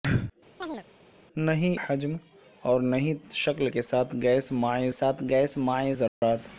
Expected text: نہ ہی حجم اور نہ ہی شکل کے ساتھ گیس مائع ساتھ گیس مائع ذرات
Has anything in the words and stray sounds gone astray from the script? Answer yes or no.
yes